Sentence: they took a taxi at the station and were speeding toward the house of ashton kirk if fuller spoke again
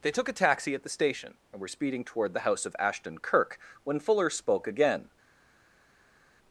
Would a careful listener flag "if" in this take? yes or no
yes